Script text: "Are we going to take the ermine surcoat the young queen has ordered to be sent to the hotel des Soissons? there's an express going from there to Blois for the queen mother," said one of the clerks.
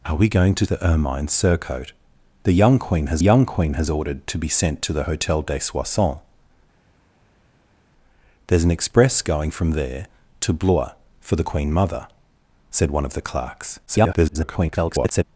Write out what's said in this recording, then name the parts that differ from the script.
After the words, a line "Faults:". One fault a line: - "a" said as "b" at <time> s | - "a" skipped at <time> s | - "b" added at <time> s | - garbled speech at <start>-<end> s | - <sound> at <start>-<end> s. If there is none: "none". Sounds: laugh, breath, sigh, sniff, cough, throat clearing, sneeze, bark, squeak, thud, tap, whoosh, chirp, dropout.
"Are we going to the ermine surcoat the young queen has young queen has ordered to be sent to the hotel des Soissons? there's an express going from there to Blois for the queen mother," said one of the clerks. [garbled]
Faults:
- "take" skipped at 0.7 s
- "young queen has" added at 3.2 s
- garbled speech at 13.9-15.2 s